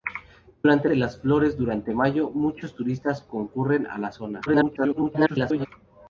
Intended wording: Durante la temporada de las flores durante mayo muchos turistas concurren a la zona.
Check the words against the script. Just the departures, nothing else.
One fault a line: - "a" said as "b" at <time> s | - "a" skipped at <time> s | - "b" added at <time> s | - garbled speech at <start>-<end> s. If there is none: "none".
- "la temporada" skipped at 0.9 s
- garbled speech at 4.5-5.7 s